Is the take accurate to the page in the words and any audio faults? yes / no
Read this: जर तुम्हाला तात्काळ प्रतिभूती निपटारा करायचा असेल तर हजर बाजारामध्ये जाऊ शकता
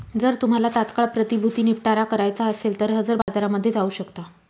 no